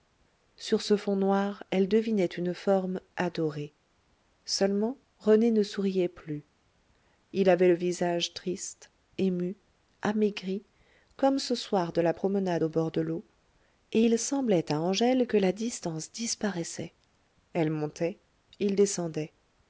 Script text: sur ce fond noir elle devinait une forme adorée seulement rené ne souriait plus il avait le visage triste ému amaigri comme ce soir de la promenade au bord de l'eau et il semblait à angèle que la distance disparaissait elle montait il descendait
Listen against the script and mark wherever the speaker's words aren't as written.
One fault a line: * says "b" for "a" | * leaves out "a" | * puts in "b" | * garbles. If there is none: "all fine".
all fine